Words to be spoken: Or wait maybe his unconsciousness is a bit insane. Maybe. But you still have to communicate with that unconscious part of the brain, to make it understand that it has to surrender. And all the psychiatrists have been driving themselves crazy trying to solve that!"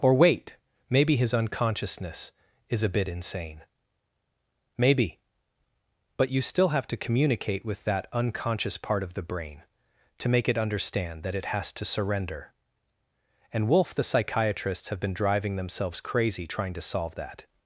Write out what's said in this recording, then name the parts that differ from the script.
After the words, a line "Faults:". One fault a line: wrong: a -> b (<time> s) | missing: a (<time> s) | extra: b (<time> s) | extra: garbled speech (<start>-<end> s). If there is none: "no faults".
Or wait maybe his unconsciousness is a bit insane. Maybe. But you still have to communicate with that unconscious part of the brain, to make it understand that it has to surrender. And wolf the psychiatrists have been driving themselves crazy trying to solve that!"
Faults:
wrong: all -> wolf (13.7 s)